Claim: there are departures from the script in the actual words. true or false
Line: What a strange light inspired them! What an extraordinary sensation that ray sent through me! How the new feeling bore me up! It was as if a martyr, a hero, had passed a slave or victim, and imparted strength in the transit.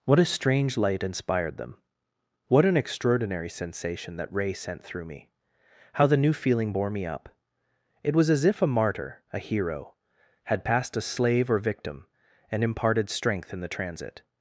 false